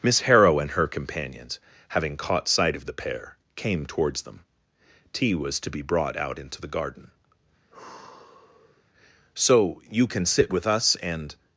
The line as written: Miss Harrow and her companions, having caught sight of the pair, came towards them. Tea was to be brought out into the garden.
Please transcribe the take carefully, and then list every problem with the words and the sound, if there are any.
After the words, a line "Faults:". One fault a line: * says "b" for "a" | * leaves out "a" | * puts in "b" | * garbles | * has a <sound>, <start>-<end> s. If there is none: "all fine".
Miss Harrow and her companions, having caught sight of the pair, came towards them. Tea was to be brought out into the garden. 'So you can sit with us and
Faults:
* has a sigh, 7.7-8.8 s
* puts in "So you can sit with us and"